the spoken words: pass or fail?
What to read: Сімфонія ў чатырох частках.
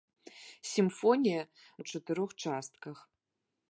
pass